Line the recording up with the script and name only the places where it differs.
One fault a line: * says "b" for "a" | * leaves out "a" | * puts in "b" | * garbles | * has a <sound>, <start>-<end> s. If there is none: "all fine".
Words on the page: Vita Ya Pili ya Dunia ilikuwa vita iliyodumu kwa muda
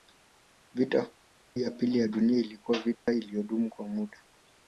* has a dropout, 2.9-3.1 s